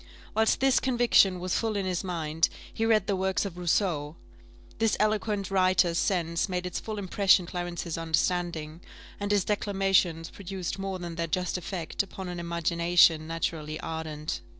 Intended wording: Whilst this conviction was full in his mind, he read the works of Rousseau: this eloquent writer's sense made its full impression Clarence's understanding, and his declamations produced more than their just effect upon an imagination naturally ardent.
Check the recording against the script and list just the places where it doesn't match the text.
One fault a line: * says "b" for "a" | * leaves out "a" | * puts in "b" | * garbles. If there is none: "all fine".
all fine